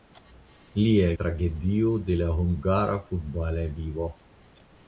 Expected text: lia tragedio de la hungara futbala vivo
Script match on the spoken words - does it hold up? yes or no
yes